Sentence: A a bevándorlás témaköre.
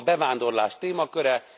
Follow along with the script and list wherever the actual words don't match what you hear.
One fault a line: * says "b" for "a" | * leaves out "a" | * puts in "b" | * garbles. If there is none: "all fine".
all fine